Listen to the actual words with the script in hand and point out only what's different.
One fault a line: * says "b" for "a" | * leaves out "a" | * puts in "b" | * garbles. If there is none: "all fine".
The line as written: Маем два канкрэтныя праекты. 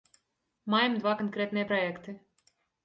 all fine